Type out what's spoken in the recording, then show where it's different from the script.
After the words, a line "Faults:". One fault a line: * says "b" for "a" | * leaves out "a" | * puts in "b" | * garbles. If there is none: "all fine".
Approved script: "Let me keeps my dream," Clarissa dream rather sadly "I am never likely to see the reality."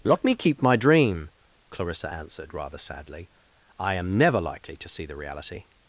"Let me keep my dream," Clarissa answered rather sadly "I am never likely to see the reality."
Faults:
* says "keep" for "keeps"
* says "answered" for "dream"